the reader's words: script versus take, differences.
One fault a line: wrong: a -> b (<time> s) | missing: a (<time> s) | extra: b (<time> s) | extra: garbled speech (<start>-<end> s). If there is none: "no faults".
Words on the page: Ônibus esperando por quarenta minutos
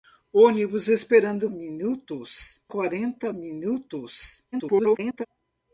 wrong: por -> minutos (1.5 s)
extra: garbled speech (4.5-5.3 s)